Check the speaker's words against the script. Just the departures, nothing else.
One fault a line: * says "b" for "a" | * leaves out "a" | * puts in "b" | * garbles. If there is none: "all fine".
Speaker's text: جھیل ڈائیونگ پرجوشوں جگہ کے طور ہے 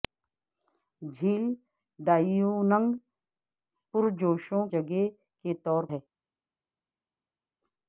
all fine